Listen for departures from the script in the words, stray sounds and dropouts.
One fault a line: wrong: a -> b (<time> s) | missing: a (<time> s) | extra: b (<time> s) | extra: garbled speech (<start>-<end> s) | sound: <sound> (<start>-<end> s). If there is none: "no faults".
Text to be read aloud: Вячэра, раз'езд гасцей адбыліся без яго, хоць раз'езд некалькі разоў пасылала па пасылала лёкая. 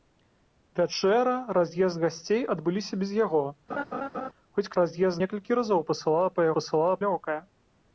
sound: laugh (3.7-4.3 s)